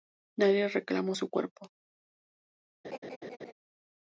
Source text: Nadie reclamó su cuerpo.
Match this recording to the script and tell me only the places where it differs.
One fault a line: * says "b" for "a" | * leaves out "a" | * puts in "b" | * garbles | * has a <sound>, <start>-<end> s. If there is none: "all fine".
* has a laugh, 2.8-3.5 s